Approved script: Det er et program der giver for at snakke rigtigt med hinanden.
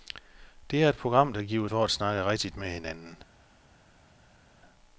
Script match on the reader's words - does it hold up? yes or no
yes